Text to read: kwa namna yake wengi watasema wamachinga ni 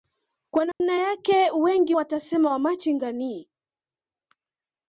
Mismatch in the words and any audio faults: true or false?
true